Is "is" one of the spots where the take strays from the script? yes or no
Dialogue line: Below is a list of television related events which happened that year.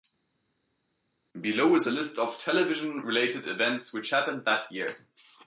no